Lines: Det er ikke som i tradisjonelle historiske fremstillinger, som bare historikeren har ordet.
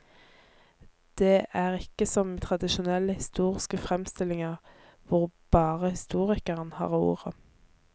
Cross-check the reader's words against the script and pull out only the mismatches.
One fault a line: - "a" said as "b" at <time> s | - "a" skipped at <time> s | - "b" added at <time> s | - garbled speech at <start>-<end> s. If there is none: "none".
- "som" said as "hvor" at 5.1 s